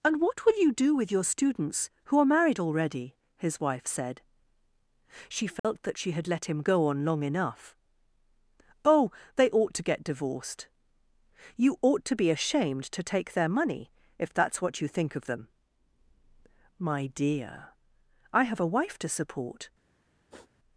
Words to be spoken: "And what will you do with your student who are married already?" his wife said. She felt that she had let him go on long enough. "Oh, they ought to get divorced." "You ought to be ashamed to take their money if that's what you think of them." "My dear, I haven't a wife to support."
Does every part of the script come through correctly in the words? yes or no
no